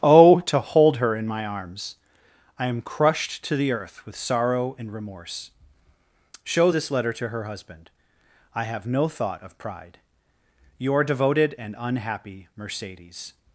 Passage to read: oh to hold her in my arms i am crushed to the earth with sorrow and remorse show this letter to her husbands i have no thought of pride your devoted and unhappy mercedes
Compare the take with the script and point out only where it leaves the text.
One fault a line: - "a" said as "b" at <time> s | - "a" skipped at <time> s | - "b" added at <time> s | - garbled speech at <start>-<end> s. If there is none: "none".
- "husbands" said as "husband" at 7.4 s